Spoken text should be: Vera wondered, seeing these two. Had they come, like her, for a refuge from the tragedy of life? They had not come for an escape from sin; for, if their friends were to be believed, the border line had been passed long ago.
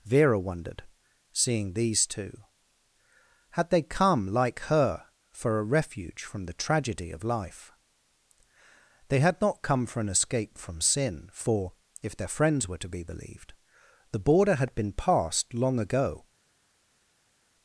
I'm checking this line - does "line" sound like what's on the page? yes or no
no